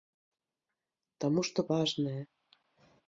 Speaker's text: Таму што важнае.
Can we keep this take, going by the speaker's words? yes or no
yes